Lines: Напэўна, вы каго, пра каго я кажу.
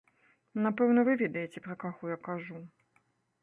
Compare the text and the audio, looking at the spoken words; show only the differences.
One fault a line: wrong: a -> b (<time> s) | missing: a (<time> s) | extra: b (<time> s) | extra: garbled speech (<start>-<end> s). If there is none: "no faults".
wrong: каго -> ведаеце (1.2 s)